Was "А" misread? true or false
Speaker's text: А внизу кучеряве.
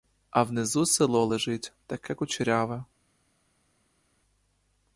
false